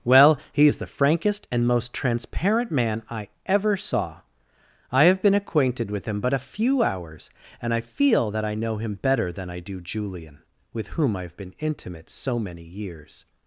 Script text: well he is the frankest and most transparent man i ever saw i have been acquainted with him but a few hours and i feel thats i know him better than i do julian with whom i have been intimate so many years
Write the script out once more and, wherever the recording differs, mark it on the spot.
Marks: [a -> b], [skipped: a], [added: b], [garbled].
well he is the frankest and most transparent man i ever saw i have been acquainted with him but a few hours and i feel [thats -> that] i know him better than i do julian with whom i have been intimate so many years